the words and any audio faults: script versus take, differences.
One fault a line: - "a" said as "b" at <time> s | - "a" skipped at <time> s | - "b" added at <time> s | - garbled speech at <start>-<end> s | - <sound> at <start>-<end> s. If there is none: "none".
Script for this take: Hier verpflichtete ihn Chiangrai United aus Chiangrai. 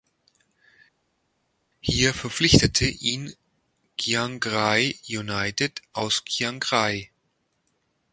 none